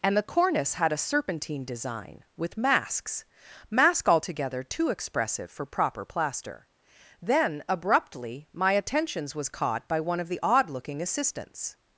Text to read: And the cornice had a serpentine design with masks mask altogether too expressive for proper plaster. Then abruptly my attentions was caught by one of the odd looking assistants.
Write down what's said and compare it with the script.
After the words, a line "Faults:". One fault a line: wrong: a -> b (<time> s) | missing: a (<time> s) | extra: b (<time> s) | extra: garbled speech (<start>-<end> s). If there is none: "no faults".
And the cornice had a serpentine design with masks mask altogether too expressive for proper plaster. Then abruptly my attentions was caught by one of the odd looking assistants.
Faults:
no faults